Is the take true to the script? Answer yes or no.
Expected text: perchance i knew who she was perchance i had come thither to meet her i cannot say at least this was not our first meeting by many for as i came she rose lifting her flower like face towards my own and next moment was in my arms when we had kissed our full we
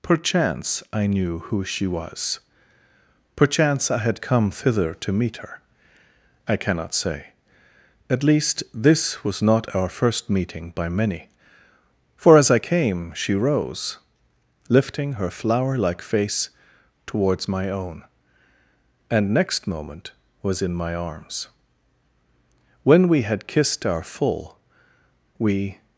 yes